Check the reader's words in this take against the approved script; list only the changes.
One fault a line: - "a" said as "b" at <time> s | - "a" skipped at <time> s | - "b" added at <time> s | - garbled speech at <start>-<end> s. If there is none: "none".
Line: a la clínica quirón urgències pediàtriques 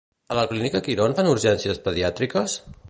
- "fan" added at 1.2 s